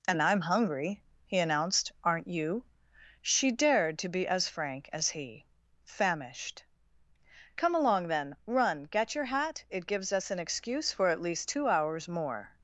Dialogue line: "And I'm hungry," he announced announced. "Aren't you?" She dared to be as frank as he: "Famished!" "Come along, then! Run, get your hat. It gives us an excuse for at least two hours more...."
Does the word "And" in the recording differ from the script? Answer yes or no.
no